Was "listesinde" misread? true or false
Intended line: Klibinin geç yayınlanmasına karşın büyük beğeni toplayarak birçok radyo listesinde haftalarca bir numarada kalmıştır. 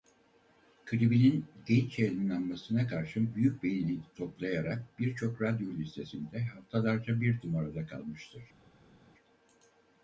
false